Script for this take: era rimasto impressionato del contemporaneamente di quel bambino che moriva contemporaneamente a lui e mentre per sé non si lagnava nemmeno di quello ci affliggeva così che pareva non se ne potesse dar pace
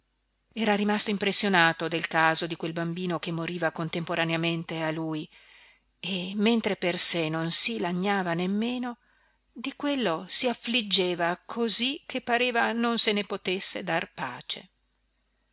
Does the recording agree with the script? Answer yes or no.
no